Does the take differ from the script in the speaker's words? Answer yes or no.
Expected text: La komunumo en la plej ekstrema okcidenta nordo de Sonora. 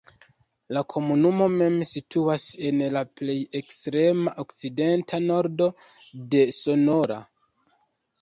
yes